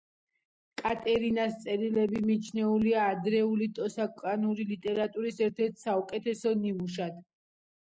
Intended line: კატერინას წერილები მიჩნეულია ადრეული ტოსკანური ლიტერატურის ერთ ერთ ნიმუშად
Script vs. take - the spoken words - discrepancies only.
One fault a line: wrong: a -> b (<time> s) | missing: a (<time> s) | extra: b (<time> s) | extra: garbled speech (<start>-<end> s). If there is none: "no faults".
extra: საუკეთესო (5.9 s)